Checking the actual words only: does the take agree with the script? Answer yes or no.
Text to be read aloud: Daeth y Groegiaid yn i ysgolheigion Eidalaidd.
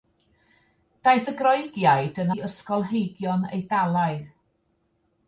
yes